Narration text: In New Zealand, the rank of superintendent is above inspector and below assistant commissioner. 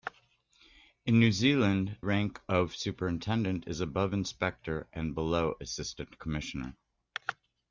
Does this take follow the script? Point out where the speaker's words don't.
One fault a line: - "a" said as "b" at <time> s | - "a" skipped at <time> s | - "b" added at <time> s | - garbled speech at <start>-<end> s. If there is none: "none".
- "the" skipped at 2.0 s